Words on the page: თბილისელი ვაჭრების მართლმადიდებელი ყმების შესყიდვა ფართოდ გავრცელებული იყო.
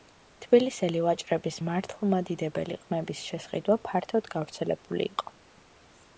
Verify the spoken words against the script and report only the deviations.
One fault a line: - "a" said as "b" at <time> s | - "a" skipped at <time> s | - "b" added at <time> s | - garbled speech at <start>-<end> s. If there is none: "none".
none